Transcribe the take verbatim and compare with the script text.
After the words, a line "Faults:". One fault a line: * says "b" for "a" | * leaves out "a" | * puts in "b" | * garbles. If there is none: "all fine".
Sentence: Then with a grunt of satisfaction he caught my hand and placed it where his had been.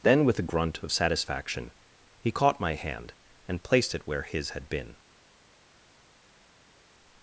Then with a grunt of satisfaction he caught my hand and placed it where his had been.
Faults:
all fine